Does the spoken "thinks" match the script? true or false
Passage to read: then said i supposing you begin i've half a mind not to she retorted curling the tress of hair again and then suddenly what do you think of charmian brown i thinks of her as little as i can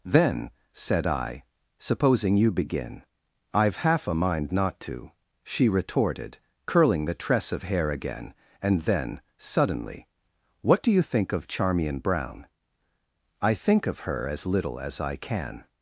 false